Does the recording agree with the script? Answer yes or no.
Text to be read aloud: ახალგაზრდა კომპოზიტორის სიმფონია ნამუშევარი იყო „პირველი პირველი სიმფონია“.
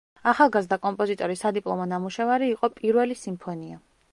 no